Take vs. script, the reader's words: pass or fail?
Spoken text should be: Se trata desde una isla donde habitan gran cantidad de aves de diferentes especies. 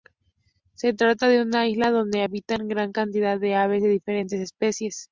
fail